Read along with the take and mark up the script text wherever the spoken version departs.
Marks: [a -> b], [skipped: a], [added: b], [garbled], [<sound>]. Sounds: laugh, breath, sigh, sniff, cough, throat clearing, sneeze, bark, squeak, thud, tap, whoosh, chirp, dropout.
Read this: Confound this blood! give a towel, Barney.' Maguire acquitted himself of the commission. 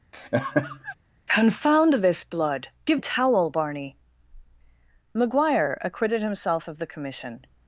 [laugh] Confound this blood! give a towel, Barney.' Maguire acquitted himself of the commission.